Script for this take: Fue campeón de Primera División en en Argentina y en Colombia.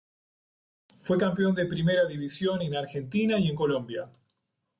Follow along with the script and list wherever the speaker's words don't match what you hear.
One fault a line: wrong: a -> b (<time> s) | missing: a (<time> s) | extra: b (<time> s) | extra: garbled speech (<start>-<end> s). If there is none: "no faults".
missing: en (2.7 s)